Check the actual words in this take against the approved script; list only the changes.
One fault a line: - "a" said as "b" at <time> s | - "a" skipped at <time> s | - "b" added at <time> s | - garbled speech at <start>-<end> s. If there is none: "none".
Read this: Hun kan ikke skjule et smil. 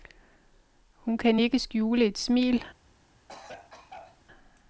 none